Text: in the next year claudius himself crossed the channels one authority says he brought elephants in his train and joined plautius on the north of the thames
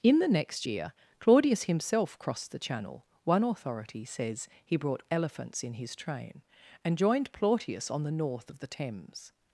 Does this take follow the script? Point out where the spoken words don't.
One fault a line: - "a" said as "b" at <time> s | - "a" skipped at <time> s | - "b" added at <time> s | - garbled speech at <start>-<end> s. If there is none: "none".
- "channels" said as "channel" at 2.6 s